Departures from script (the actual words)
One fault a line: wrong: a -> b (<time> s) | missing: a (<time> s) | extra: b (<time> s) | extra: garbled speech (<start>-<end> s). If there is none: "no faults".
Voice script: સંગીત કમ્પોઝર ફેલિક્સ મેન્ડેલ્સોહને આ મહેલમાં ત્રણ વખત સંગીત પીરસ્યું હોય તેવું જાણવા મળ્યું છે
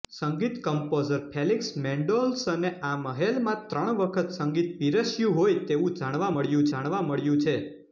extra: જાણવા મળ્યું (6.7 s)